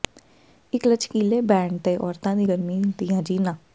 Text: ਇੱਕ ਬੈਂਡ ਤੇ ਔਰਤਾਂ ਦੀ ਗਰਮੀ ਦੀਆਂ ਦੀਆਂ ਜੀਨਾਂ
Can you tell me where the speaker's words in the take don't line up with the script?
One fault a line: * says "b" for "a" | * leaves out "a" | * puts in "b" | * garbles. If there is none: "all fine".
* puts in "ਲਚਕੀਲੇ"
* leaves out "ਦੀਆਂ"